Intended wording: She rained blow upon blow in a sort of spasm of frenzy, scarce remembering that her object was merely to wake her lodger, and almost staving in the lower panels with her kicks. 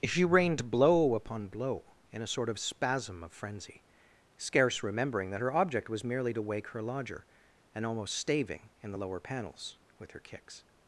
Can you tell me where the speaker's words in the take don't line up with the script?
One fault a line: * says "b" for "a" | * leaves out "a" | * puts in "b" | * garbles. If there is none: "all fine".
all fine